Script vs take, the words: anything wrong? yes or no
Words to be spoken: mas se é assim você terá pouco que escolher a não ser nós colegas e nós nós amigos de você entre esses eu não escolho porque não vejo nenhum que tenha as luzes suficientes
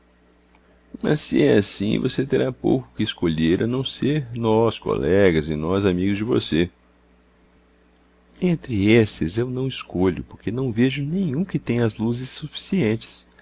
yes